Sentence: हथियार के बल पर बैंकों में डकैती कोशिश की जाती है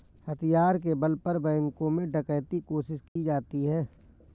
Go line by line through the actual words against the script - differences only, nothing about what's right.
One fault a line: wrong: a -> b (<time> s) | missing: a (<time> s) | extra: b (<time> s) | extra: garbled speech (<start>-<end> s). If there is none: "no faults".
no faults